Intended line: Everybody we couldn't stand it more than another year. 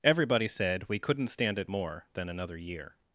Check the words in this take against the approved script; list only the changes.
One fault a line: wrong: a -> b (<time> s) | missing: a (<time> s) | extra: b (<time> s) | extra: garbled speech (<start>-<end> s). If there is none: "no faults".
extra: said (0.5 s)